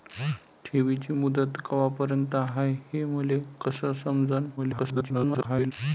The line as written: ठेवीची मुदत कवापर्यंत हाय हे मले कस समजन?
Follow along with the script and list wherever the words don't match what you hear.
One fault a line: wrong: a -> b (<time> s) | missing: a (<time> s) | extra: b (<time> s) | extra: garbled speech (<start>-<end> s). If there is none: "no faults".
extra: garbled speech (4.6-5.7 s)